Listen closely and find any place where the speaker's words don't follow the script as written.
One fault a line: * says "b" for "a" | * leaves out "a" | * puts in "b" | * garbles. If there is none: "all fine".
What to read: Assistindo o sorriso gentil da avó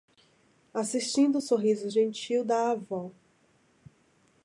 all fine